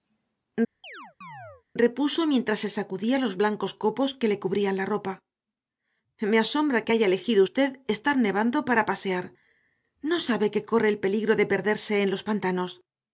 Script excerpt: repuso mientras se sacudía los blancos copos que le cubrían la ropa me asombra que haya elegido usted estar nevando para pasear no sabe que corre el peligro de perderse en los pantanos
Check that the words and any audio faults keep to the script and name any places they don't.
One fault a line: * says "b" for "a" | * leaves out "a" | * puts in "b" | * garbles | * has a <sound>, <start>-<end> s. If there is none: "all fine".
* has a chirp, 0.8-1.6 s